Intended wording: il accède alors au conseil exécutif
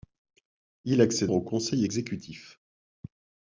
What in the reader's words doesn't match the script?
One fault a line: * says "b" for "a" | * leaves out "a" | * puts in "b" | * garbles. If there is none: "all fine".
* leaves out "alors"